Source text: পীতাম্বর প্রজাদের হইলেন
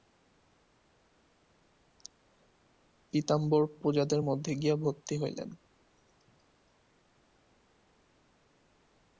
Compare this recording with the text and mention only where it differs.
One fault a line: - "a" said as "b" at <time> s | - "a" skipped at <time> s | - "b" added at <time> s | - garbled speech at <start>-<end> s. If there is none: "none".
- "মধ্যে গিয়া ভর্তি" added at 4.2 s